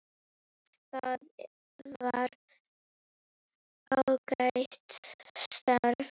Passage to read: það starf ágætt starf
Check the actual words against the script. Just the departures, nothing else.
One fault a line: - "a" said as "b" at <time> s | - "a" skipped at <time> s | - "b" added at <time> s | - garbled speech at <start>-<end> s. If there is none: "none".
- "starf" said as "var" at 2.0 s